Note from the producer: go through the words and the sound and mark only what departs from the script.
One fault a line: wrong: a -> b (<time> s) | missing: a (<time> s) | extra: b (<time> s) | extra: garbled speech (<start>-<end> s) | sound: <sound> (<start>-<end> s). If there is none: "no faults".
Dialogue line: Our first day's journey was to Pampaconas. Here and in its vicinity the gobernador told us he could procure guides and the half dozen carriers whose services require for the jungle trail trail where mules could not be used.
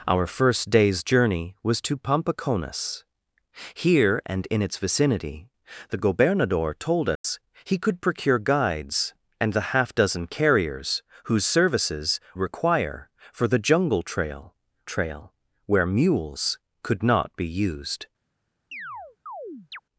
sound: dropout (7.2-7.2 s)
sound: chirp (18.7-19.8 s)